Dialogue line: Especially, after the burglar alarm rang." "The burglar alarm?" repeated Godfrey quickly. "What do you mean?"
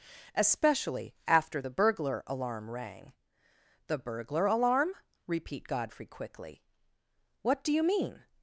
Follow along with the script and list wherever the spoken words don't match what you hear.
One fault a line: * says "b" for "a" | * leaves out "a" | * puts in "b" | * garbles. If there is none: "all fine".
* says "repeat" for "repeated"